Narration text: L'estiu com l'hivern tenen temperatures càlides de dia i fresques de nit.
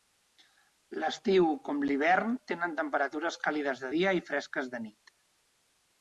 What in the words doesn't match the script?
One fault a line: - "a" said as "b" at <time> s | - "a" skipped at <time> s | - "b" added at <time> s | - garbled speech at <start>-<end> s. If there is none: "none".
none